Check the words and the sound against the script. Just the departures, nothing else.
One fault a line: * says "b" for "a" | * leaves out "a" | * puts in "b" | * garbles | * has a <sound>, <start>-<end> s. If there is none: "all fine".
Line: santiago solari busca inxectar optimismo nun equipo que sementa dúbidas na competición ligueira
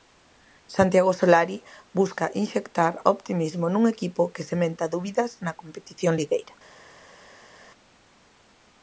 all fine